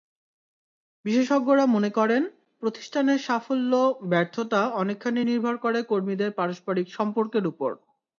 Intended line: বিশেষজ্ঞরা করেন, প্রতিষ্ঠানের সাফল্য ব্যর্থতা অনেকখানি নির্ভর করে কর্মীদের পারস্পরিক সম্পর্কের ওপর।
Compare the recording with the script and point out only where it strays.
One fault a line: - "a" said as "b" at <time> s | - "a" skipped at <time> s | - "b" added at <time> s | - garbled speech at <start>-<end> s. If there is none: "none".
- "মনে" added at 1.6 s